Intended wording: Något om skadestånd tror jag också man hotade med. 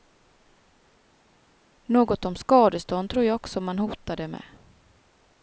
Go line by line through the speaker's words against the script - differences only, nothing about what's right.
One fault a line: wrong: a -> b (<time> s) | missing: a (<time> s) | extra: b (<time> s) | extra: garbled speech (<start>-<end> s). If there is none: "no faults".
no faults